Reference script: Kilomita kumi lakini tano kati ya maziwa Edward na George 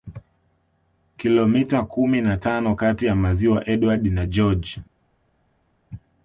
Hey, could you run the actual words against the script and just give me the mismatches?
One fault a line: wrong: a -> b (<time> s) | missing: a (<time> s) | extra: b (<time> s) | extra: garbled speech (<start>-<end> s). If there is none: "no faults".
wrong: lakini -> na (2.2 s)